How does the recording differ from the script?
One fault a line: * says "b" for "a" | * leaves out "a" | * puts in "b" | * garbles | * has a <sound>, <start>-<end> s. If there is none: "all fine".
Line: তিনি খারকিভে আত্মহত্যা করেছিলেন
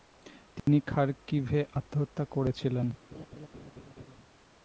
* has a dropout, 0.6-0.7 s
* has a laugh, 3.1-4.2 s